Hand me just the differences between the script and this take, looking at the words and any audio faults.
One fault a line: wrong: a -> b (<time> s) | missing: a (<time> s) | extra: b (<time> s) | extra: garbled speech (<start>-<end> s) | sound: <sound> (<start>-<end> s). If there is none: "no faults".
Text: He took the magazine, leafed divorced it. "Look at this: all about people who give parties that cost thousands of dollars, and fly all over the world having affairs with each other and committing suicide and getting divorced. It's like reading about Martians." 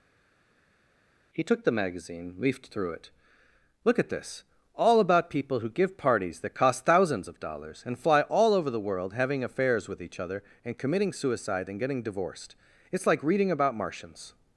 wrong: divorced -> through (2.7 s)